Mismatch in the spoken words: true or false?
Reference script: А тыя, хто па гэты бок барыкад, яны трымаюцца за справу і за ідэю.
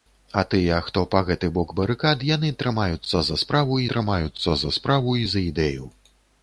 true